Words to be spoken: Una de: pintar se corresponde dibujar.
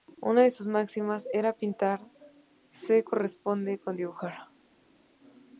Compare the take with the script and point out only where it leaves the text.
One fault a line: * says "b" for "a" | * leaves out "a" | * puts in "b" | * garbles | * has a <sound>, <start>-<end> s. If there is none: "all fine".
* puts in "sus máximas era"
* puts in "con"